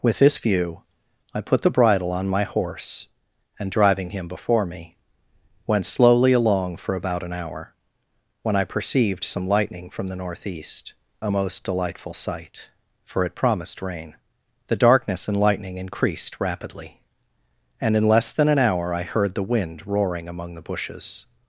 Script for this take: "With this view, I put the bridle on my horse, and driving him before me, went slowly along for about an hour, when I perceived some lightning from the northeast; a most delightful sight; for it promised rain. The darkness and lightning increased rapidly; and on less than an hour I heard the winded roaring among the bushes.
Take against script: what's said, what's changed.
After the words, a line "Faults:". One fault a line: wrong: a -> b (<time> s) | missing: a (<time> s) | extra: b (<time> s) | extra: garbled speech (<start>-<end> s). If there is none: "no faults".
"With this view, I put the bridle on my horse, and driving him before me, went slowly along for about an hour, when I perceived some lightning from the northeast; a most delightful sight; for it promised rain. The darkness and lightning increased rapidly; and in less than an hour I heard the wind roaring among the bushes.
Faults:
wrong: on -> in (18.0 s)
wrong: winded -> wind (19.5 s)